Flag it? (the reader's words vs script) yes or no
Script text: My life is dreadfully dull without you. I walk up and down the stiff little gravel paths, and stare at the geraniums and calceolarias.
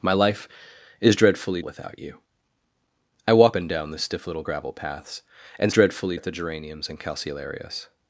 yes